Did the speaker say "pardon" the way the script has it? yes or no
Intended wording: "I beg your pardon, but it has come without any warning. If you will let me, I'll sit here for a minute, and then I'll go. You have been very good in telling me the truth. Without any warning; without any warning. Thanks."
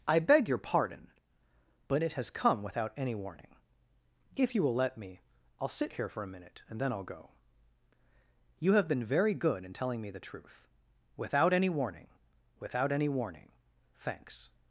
yes